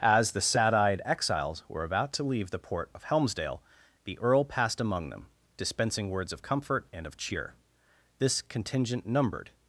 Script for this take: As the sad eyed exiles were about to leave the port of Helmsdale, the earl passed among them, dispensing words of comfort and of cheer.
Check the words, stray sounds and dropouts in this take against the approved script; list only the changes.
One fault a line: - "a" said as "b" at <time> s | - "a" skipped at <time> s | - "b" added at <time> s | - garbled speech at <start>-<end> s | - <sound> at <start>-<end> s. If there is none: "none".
- "This contingent numbered" added at 8.2 s